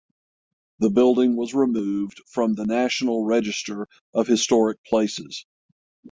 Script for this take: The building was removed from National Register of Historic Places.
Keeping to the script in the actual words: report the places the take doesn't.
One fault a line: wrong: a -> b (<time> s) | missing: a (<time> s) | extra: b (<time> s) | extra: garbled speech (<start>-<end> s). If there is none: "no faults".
extra: the (2.5 s)